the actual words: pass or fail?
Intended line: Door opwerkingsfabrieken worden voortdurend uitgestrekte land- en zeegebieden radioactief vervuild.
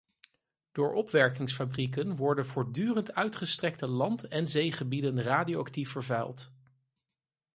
pass